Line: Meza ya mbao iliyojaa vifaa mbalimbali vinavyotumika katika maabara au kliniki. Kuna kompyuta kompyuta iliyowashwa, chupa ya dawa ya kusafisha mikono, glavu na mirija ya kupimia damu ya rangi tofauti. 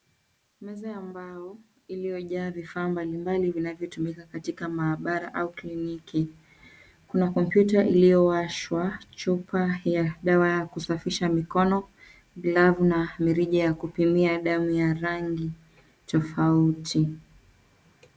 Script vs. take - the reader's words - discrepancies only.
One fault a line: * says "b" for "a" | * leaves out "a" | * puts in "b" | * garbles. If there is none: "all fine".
* leaves out "kompyuta"